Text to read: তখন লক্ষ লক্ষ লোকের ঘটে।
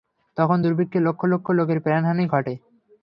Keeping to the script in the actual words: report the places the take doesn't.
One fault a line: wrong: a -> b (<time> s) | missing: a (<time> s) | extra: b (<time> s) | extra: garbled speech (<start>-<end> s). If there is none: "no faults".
extra: দুর্ভিক্ষে (0.6 s)
extra: প্রাণহানি (1.8 s)